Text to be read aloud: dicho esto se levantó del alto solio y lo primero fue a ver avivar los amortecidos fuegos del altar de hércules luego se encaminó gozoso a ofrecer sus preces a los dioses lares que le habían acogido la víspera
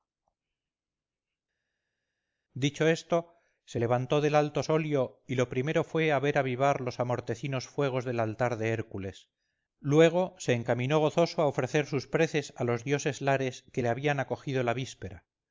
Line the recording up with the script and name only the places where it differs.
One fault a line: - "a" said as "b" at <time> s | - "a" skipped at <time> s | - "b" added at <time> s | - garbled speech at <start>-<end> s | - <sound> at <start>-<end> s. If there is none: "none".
none